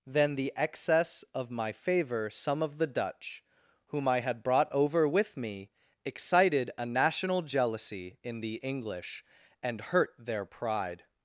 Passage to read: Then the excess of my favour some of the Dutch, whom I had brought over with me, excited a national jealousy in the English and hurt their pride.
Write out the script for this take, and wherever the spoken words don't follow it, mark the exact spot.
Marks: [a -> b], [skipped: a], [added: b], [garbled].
Then the excess of my favour some of the Dutch, whom I had brought over with me, excited a national jealousy in the English and hurt their pride.